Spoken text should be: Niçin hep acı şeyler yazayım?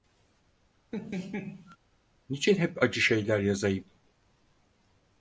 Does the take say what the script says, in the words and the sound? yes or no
no